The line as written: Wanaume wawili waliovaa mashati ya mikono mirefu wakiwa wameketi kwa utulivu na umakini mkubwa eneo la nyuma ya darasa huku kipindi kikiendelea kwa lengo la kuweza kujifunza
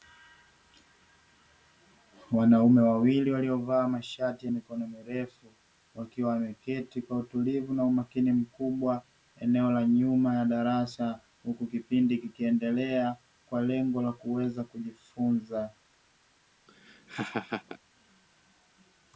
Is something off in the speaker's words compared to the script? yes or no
no